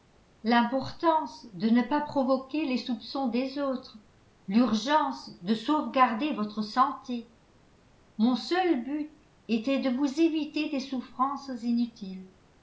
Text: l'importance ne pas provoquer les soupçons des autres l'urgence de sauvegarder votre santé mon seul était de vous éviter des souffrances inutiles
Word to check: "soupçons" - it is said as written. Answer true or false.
true